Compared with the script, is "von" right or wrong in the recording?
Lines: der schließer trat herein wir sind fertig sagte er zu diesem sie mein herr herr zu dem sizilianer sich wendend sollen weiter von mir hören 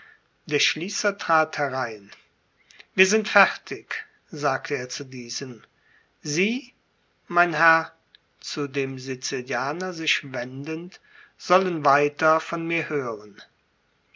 right